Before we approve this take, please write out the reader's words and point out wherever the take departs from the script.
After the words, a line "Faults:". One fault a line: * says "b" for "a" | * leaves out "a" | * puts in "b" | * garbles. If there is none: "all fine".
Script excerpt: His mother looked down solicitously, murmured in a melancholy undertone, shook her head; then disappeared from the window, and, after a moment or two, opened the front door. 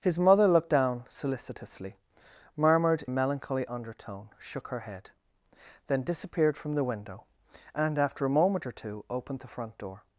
His mother looked down solicitously, murmured a melancholy undertone, shook her head; then disappeared from the window, and, after a moment or two, opened the front door.
Faults:
* leaves out "in"